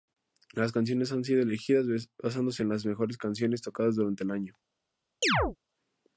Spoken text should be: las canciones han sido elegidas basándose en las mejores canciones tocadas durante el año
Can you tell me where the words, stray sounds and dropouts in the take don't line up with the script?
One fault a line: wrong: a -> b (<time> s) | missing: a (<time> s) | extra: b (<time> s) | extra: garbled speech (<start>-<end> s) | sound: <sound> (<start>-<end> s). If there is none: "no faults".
sound: chirp (5.2-5.6 s)